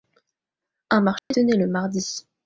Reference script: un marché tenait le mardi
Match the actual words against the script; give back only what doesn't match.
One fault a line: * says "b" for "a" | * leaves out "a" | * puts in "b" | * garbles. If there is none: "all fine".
all fine